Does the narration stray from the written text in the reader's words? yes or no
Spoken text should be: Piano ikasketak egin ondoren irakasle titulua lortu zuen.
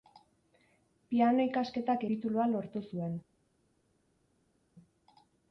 yes